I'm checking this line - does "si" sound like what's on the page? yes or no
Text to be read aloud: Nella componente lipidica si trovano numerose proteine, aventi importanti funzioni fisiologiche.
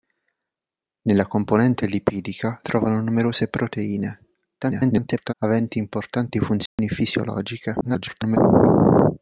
no